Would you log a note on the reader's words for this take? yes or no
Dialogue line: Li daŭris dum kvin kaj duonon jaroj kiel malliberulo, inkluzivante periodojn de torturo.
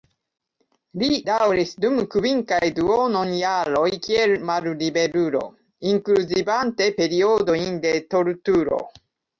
no